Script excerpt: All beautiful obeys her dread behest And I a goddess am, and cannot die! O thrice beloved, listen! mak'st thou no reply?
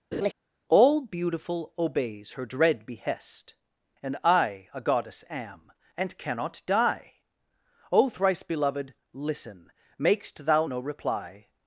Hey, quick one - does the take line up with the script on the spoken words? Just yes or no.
yes